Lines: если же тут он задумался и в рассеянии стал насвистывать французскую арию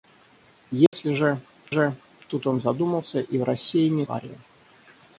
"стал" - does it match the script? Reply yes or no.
no